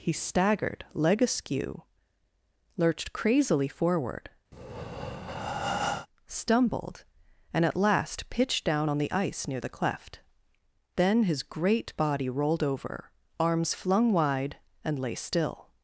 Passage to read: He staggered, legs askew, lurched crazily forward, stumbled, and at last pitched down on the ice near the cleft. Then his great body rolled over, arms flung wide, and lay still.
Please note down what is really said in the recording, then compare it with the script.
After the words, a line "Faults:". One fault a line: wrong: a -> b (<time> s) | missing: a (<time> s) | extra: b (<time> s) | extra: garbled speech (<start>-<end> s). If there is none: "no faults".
He staggered, leg askew, lurched crazily forward, stumbled, and at last pitched down on the ice near the cleft. Then his great body rolled over, arms flung wide, and lay still.
Faults:
wrong: legs -> leg (0.9 s)